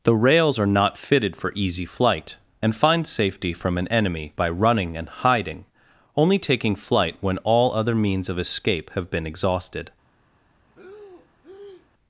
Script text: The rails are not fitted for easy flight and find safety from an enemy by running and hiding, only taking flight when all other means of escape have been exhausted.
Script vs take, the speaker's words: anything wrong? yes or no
no